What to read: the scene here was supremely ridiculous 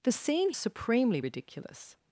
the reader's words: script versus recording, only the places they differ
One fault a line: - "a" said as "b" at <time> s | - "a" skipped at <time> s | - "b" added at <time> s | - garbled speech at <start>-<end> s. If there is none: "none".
- "here was" skipped at 0.5 s